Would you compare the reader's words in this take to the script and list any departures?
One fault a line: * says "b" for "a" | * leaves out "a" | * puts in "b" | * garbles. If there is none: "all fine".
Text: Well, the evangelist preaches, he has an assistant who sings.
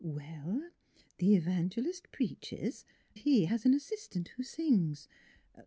all fine